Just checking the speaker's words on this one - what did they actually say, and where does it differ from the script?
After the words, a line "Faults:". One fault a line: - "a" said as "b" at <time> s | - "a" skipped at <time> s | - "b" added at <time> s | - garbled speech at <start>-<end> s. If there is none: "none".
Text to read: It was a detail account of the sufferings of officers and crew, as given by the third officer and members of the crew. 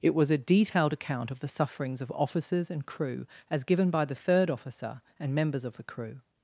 It was a detailed account of the sufferings of officers and crew, as given by the third officer and members of the crew.
Faults:
- "detail" said as "detailed" at 0.4 s